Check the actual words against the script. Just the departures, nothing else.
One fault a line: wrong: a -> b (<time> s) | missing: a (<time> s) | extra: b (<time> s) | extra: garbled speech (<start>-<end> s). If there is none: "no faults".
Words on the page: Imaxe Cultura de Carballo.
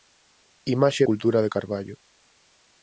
no faults